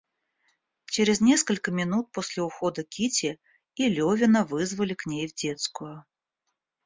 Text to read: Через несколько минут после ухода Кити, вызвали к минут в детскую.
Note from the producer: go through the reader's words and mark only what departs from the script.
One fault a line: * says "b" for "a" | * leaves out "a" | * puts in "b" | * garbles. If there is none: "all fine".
* puts in "и Левина"
* says "ней" for "минут"